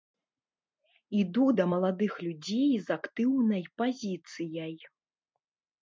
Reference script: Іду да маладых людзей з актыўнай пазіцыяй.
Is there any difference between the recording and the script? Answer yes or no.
no